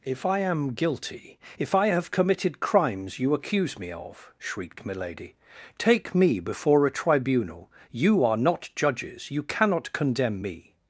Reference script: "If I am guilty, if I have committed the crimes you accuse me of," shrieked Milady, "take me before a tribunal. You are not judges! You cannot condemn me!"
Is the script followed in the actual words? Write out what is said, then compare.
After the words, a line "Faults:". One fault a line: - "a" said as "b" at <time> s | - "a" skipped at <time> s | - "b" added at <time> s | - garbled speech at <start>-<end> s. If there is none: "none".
"If I am guilty, if I have committed crimes you accuse me of," shrieked Milady, "take me before a tribunal. You are not judges! You cannot condemn me!"
Faults:
- "the" skipped at 2.6 s